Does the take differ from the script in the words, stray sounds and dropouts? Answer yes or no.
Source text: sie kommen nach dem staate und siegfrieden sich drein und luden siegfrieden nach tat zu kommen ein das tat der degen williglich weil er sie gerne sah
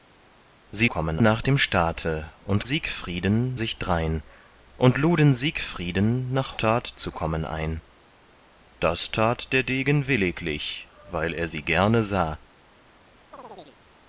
yes